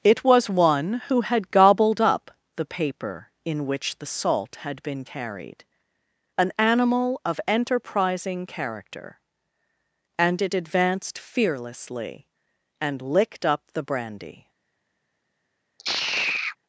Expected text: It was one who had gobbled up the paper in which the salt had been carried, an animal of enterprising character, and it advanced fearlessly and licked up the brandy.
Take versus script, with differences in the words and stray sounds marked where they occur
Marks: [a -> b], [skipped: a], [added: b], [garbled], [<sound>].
It was one who had gobbled up the paper in which the salt had been carried, an animal of enterprising character, and it advanced fearlessly and licked up the brandy. [sigh]